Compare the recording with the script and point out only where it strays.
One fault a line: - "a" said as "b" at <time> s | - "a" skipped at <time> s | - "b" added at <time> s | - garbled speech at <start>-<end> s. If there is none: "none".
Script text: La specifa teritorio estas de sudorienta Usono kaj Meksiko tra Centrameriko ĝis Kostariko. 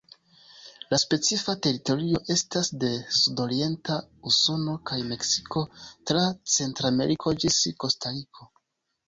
none